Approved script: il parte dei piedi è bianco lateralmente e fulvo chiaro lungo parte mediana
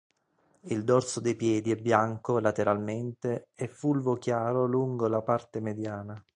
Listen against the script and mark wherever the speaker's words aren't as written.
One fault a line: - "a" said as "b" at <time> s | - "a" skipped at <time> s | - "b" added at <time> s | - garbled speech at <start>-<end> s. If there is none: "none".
- "parte" said as "dorso" at 0.8 s
- "la" added at 5.1 s